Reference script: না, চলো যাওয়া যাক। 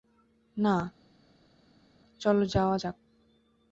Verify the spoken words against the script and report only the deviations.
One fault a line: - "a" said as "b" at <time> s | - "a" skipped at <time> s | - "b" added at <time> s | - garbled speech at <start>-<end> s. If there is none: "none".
none